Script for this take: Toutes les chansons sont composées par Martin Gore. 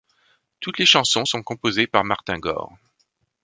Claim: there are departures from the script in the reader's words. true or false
false